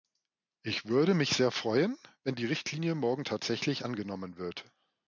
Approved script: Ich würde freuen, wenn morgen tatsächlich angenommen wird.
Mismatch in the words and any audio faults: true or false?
true